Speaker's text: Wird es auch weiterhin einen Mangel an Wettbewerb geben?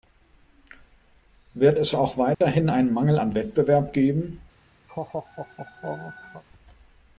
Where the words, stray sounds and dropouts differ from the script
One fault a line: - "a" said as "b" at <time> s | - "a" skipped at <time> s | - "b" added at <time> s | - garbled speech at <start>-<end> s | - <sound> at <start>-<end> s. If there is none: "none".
- dropout at 2.3-2.4 s
- laugh at 4.9-6.4 s